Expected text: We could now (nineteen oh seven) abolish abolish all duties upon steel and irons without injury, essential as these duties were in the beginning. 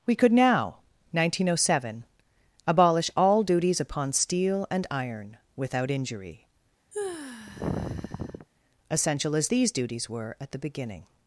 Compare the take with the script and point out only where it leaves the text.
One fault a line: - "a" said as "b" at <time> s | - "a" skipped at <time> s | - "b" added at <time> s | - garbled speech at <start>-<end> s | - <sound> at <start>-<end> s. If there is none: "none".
- "abolish" skipped at 3.1 s
- "irons" said as "iron" at 4.9 s
- sigh at 6.9-8.5 s
- "in" said as "at" at 10.4 s